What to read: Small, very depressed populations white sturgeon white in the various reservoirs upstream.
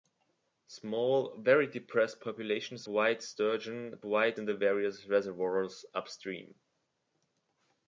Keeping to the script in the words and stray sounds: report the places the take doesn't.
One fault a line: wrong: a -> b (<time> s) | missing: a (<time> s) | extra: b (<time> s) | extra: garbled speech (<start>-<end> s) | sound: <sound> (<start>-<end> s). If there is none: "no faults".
no faults